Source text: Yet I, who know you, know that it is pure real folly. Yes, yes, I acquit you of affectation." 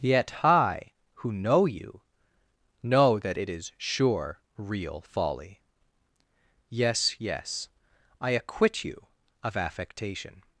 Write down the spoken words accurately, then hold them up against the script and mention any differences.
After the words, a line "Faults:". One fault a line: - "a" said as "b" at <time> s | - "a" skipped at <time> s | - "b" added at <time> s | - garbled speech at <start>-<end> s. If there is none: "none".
Yet I, who know you, know that it is sure real folly. Yes, yes, I acquit you of affectation."
Faults:
- "pure" said as "sure" at 3.8 s